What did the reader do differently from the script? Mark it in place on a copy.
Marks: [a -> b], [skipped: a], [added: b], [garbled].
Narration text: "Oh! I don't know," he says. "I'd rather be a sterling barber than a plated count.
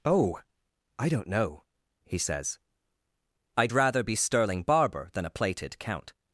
"Oh! I don't know," he says. "I'd rather be [skipped: a] sterling barber than a plated count.